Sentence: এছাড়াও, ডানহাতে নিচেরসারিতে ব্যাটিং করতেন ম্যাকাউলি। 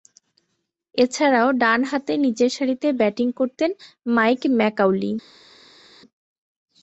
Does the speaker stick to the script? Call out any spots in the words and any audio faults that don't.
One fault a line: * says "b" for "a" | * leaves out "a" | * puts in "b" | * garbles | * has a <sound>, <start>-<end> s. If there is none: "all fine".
* puts in "মাইক"